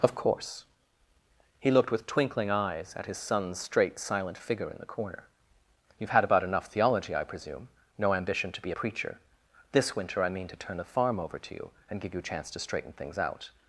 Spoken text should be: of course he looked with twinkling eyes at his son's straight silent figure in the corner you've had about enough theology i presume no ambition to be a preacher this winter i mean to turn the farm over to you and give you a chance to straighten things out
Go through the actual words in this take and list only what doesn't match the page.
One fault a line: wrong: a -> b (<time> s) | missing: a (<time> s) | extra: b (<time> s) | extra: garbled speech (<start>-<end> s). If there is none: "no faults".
missing: a (8.7 s)